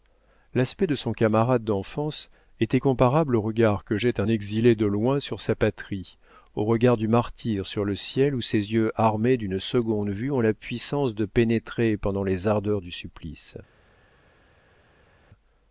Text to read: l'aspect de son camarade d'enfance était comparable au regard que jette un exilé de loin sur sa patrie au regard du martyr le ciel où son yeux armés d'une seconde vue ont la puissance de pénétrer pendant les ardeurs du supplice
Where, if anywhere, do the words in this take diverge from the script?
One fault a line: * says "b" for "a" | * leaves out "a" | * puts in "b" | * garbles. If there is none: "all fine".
* puts in "sur"
* says "ses" for "son"